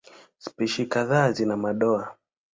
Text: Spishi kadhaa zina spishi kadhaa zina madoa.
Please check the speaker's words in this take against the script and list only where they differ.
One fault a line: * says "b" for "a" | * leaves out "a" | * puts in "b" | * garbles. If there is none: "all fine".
* leaves out "spishi kadhaa zina"